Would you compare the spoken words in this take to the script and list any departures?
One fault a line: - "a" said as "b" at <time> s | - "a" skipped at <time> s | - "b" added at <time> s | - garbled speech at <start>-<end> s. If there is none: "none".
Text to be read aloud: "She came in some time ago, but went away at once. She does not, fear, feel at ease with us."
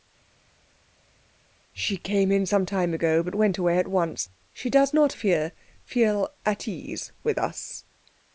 none